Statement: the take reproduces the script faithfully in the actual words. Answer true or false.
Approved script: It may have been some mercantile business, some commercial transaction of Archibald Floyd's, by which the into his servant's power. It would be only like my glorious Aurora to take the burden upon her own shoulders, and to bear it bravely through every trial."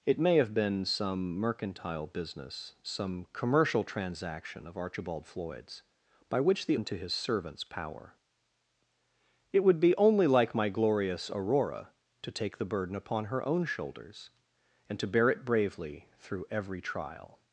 true